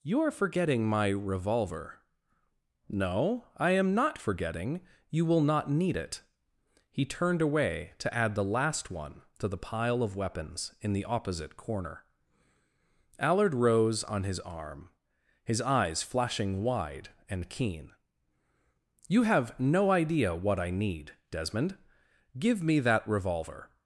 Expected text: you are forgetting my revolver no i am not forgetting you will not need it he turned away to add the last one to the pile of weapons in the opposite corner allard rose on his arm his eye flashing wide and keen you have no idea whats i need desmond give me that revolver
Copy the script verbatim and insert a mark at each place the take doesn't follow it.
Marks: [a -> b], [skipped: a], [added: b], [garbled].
you are forgetting my revolver no i am not forgetting you will not need it he turned away to add the last one to the pile of weapons in the opposite corner allard rose on his arm his [eye -> eyes] flashing wide and keen you have no idea [whats -> what] i need desmond give me that revolver